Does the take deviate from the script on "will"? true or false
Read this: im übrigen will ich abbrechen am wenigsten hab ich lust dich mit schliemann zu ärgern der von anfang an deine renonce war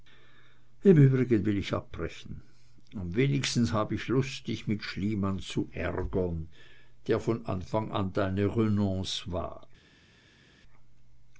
false